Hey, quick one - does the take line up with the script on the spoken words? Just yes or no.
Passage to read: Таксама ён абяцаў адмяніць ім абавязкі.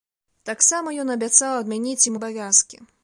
yes